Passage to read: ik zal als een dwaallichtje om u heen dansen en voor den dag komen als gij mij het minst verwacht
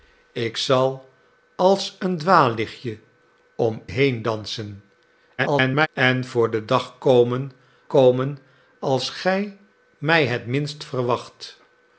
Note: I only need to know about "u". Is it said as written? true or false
false